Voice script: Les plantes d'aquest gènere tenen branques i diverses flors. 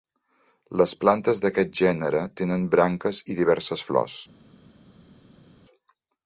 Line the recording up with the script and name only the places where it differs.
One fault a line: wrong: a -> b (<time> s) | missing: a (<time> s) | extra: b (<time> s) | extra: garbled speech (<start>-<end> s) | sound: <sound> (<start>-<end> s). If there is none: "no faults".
no faults